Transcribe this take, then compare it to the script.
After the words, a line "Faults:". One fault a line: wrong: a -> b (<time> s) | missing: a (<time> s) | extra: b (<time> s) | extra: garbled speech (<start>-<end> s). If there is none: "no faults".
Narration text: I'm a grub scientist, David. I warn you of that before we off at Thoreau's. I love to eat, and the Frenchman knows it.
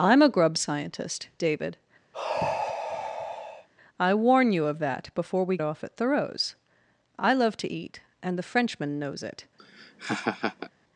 I'm a grub scientist, David. I warn you of that before we off at Thoreau's. I love to eat, and the Frenchman knows it.
Faults:
no faults